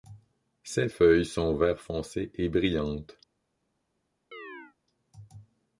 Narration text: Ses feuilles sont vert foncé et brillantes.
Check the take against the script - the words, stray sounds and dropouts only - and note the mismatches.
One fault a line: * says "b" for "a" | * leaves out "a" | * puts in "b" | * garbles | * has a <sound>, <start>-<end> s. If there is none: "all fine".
* has a chirp, 4.3-4.8 s